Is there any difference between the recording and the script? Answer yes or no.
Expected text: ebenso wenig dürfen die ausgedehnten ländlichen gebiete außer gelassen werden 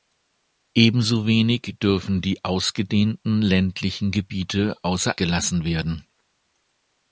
no